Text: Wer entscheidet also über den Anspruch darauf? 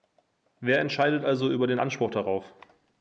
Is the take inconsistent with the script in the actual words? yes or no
no